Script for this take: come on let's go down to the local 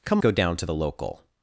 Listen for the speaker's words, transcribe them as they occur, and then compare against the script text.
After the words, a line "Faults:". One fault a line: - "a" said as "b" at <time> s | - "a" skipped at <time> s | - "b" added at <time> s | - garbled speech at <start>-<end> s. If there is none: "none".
come go down to the local
Faults:
- "on let's" skipped at 0.2 s